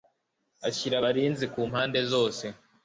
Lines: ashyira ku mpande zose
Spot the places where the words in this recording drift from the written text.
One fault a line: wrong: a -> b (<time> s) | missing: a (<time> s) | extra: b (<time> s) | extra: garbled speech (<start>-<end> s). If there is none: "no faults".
extra: abarinzi (1.0 s)